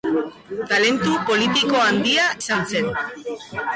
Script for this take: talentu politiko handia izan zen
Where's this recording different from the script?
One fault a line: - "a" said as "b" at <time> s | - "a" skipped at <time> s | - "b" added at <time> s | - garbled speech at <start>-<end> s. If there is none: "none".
none